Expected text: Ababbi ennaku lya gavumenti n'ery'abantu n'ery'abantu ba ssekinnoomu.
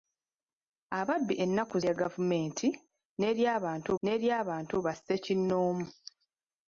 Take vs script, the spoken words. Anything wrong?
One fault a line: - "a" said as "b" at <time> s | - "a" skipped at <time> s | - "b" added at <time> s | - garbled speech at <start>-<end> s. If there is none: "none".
none